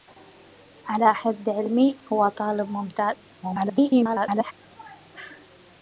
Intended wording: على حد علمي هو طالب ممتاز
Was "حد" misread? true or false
false